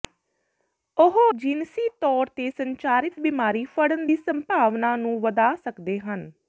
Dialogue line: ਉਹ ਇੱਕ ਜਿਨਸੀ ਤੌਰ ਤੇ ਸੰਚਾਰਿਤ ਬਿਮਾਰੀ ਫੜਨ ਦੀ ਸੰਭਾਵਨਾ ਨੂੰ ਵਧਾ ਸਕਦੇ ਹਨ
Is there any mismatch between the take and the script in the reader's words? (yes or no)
yes